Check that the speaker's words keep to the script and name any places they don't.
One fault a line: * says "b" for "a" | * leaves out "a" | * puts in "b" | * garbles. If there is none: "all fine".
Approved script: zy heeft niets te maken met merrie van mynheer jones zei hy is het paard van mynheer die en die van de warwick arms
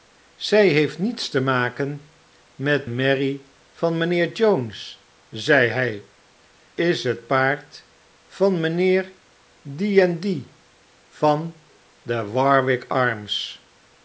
all fine